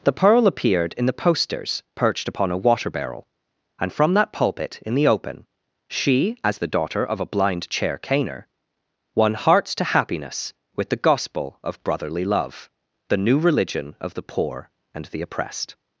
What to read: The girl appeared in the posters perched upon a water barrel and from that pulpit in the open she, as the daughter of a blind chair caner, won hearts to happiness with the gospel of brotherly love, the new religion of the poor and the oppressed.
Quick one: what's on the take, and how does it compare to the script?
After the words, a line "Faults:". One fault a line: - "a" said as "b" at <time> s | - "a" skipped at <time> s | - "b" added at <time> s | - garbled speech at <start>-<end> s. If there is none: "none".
The pearl appeared in the posters perched upon a water barrel and from that pulpit in the open she, as the daughter of a blind chair caner, won hearts to happiness with the gospel of brotherly love, the new religion of the poor and the oppressed.
Faults:
- "girl" said as "pearl" at 0.1 s